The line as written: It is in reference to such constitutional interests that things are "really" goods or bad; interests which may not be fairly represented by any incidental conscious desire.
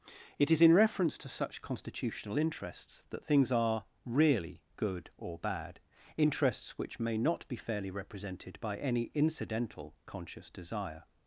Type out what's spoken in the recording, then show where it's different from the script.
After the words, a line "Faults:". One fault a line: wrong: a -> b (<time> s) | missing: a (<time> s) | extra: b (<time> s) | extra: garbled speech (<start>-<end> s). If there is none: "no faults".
It is in reference to such constitutional interests that things are "really" good or bad; interests which may not be fairly represented by any incidental conscious desire.
Faults:
wrong: goods -> good (4.8 s)